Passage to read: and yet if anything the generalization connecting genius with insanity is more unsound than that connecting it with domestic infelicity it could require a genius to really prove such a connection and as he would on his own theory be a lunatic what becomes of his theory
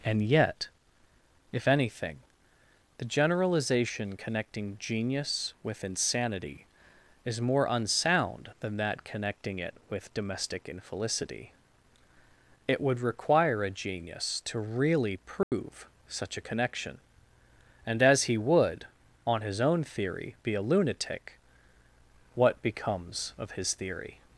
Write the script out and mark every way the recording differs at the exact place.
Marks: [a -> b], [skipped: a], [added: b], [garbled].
and yet if anything the generalization connecting genius with insanity is more unsound than that connecting it with domestic infelicity it [could -> would] require a genius to really prove such a connection and as he would on his own theory be a lunatic what becomes of his theory